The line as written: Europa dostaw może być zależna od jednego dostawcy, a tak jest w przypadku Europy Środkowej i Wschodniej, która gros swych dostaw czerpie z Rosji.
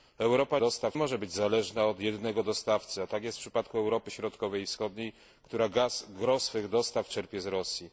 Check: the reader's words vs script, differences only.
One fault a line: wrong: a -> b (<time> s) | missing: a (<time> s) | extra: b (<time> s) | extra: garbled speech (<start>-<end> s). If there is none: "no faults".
no faults